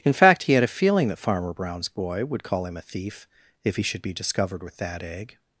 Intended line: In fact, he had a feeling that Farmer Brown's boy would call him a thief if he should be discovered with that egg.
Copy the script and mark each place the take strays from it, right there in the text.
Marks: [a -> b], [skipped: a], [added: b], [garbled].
In fact, he had a feeling that Farmer Brown's boy would call him a thief if he should be discovered with that egg.